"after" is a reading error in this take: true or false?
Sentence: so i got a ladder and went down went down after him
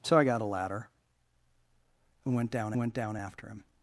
false